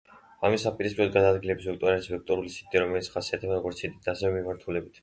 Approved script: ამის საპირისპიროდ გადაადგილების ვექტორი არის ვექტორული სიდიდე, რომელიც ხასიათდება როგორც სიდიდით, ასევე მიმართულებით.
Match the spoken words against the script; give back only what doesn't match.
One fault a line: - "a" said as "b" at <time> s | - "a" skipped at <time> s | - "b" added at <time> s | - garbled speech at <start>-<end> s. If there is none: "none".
none